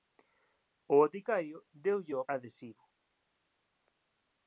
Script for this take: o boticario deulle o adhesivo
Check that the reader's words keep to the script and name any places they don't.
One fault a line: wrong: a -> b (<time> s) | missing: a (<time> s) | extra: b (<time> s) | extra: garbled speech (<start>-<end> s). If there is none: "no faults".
no faults